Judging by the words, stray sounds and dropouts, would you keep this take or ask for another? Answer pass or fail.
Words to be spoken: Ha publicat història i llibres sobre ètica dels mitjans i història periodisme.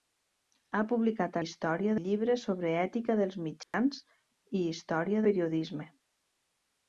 fail